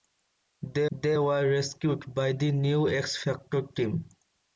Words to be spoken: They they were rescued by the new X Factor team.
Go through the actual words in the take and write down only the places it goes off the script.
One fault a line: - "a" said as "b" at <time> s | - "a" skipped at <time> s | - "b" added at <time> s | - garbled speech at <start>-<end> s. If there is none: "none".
none